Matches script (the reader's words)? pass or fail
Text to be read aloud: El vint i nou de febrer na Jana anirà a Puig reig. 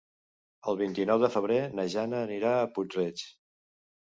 pass